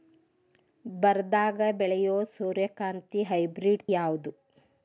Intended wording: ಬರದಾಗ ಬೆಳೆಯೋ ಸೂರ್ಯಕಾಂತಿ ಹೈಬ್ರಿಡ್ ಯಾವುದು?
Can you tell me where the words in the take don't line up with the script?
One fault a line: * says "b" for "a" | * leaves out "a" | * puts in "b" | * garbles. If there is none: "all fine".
all fine